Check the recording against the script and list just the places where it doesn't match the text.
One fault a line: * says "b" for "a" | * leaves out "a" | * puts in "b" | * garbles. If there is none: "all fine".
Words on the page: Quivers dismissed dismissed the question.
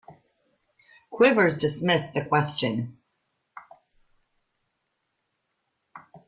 * leaves out "dismissed"